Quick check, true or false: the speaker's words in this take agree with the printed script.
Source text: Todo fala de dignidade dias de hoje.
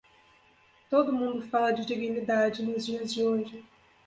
false